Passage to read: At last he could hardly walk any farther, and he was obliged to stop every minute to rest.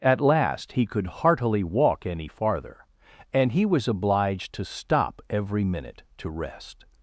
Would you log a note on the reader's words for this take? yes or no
yes